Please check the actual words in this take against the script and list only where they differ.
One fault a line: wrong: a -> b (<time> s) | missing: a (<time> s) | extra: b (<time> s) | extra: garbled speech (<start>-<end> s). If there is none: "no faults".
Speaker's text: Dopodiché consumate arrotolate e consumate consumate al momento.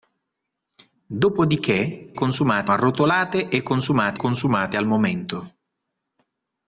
no faults